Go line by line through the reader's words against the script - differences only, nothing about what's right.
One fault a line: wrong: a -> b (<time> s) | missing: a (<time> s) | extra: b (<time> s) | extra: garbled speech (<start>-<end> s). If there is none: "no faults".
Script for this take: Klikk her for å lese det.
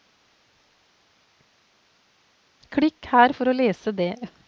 no faults